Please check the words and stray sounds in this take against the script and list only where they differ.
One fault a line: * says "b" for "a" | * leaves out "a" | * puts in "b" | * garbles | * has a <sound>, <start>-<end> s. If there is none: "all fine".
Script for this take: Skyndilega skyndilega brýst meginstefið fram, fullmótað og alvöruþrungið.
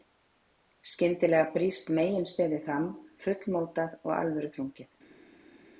* leaves out "skyndilega"